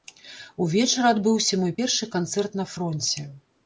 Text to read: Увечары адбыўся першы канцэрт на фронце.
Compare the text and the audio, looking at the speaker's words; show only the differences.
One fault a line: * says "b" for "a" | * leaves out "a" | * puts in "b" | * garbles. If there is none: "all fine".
* puts in "мой"